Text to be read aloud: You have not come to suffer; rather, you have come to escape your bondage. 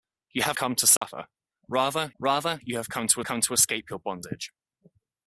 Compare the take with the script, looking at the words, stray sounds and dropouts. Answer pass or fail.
fail